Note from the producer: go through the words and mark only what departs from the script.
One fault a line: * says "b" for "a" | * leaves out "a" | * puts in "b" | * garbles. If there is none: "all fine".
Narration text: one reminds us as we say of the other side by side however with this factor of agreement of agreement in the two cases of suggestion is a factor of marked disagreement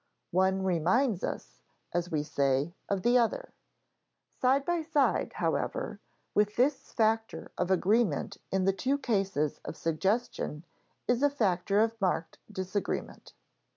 * leaves out "of agreement"